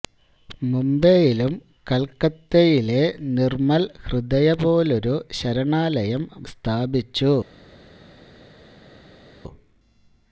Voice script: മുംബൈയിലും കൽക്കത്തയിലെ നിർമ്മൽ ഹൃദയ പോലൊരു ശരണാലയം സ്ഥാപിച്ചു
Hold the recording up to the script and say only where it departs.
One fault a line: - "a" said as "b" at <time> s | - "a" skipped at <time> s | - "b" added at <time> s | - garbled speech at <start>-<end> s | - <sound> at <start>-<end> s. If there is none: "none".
none